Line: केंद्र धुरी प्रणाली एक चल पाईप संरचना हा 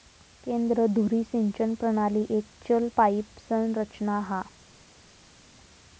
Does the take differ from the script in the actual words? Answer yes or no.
yes